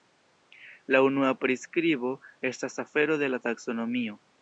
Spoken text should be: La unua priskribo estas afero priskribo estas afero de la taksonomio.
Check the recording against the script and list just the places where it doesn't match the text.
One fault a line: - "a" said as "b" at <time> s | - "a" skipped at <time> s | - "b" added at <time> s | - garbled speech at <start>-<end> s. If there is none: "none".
- "priskribo estas afero" skipped at 3.2 s